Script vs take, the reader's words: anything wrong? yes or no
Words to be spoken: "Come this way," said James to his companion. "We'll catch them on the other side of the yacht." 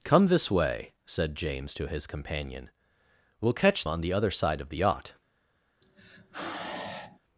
yes